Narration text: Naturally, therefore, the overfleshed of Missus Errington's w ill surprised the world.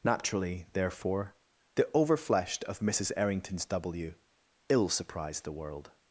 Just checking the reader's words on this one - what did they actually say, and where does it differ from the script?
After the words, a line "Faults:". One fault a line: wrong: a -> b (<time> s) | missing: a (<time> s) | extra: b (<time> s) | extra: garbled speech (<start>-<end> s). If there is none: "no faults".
Naturally, therefore, the overfleshed of Missus Errington's w ill surprised the world.
Faults:
no faults